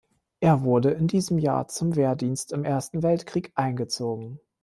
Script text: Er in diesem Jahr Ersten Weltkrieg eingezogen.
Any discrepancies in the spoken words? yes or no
yes